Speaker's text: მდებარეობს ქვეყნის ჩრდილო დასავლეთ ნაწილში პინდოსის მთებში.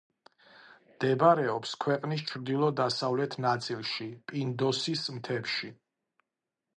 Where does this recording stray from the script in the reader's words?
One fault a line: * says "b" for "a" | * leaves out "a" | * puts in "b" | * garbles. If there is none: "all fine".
all fine